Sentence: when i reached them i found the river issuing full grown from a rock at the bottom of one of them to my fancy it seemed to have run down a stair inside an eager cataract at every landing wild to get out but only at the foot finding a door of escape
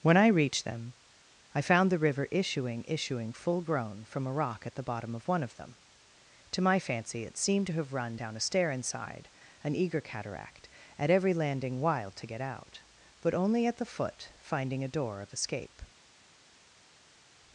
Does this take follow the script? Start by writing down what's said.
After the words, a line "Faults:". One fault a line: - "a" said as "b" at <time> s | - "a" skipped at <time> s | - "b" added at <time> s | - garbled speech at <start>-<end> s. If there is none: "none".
when i reached them i found the river issuing issuing full grown from a rock at the bottom of one of them to my fancy it seemed to have run down a stair inside an eager cataract at every landing wild to get out but only at the foot finding a door of escape
Faults:
- "issuing" added at 2.9 s